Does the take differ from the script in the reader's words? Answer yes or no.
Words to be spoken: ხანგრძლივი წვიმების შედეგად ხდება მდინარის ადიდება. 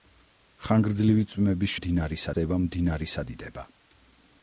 yes